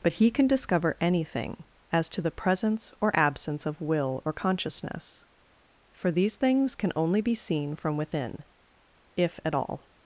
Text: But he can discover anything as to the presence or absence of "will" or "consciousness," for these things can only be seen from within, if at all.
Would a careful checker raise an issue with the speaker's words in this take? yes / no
no